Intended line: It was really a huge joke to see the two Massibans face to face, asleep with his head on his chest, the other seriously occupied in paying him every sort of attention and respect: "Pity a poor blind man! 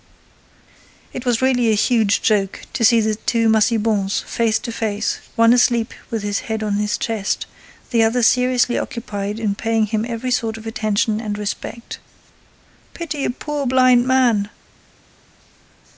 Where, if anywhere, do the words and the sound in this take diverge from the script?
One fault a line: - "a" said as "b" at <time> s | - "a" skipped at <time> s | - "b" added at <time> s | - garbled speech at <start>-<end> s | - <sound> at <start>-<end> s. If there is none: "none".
- "one" added at 5.3 s